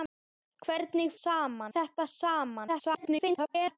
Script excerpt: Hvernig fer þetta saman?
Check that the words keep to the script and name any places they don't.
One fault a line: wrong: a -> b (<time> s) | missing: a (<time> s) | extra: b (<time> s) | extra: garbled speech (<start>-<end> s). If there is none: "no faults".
wrong: fer -> saman (1.2 s)
extra: garbled speech (2.7-3.8 s)